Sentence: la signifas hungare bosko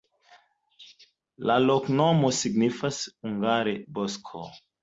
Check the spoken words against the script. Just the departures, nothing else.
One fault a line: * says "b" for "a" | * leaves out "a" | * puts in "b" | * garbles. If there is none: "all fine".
* puts in "loknomo"